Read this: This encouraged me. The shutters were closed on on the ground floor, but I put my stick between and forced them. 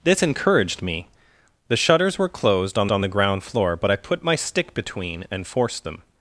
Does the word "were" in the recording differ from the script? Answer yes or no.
no